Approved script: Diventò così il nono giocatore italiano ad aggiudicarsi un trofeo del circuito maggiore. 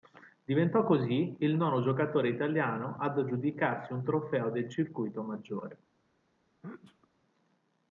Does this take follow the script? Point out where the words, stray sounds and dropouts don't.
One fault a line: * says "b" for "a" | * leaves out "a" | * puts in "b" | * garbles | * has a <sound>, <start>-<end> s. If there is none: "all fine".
* has a sneeze, 6.6-7.1 s